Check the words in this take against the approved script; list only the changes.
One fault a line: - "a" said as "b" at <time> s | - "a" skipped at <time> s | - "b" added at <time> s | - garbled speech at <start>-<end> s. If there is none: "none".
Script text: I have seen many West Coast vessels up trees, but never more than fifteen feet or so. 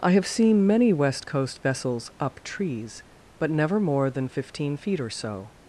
none